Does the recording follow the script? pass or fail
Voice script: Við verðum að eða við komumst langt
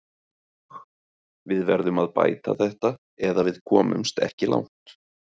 fail